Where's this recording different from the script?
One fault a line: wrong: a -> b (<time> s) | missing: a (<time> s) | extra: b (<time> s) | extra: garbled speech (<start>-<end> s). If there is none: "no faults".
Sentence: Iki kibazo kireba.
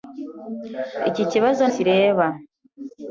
no faults